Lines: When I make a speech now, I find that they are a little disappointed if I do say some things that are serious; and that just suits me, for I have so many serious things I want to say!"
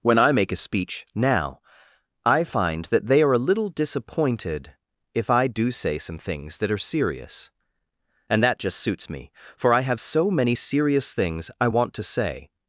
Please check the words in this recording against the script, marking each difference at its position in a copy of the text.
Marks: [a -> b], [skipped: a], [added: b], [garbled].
When I make a speech now, I find that they are a little disappointed if I do say some things that are serious; and that just suits me, for I have so many serious things I want to say!"